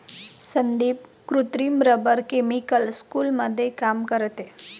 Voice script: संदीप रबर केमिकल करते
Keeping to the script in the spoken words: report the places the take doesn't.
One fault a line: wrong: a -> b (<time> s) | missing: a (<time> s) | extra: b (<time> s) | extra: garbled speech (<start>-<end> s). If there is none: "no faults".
extra: कृत्रिम (1.3 s)
extra: स्कूलमध्ये काम (2.9 s)